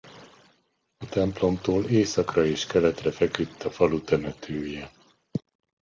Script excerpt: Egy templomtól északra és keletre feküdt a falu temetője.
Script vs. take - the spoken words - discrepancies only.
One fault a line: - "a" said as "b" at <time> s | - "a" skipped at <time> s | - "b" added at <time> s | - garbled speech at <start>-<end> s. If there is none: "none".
- "Egy" said as "A" at 1.0 s